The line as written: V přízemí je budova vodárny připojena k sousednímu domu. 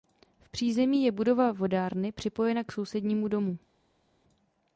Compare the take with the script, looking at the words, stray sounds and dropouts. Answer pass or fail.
pass